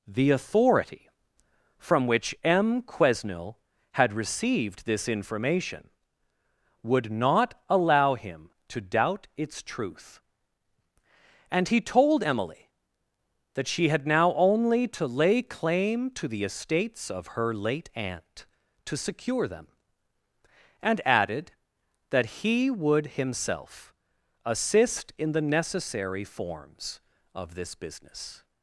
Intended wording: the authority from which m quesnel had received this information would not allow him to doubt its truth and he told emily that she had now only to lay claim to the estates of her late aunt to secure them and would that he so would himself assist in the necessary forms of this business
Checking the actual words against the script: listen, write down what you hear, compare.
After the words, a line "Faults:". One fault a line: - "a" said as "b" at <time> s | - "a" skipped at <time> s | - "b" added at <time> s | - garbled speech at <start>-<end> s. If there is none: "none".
the authority from which m quesnel had received this information would not allow him to doubt its truth and he told emily that she had now only to lay claim to the estates of her late aunt to secure them and added that he would himself assist in the necessary forms of this business
Faults:
- "would" said as "added" at 21.1 s
- "so" skipped at 22.7 s